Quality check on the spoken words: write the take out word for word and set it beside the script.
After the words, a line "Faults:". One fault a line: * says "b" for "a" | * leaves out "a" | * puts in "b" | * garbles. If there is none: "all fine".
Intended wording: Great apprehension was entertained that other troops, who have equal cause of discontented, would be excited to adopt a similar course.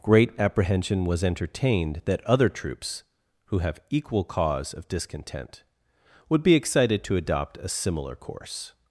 Great apprehension was entertained that other troops, who have equal cause of discontent, would be excited to adopt a similar course.
Faults:
* says "discontent" for "discontented"